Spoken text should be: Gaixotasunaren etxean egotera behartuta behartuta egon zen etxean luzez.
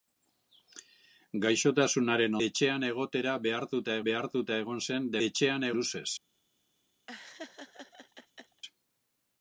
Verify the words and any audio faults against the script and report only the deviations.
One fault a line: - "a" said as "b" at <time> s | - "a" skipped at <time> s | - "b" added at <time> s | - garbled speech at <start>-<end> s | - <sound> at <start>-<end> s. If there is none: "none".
- laugh at 7.1-8.6 s